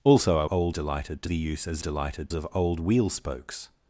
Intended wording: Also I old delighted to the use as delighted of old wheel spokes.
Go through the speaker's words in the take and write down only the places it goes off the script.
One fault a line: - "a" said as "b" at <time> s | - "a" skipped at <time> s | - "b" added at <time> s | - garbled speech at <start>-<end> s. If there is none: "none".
none